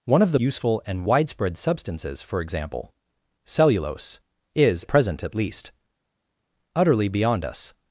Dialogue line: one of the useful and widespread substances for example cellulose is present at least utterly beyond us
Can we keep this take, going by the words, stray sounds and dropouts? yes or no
yes